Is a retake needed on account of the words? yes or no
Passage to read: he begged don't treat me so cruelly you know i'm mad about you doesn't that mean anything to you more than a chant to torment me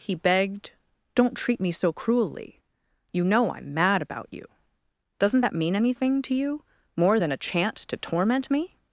no